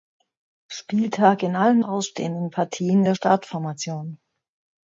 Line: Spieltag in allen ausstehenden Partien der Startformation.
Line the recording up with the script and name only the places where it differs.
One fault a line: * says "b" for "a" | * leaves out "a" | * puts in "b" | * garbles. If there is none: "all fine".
all fine